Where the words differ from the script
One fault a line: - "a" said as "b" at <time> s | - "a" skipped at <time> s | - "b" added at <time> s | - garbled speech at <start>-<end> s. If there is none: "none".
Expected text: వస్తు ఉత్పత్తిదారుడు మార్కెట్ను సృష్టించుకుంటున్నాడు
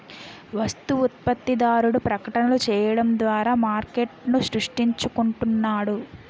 - "ప్రకటనలు చేయడం ద్వారా" added at 2.1 s